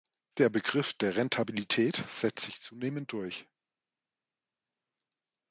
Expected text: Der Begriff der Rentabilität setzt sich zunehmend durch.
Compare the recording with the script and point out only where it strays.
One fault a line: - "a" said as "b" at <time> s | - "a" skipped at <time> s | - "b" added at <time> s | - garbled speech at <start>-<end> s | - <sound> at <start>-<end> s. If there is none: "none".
none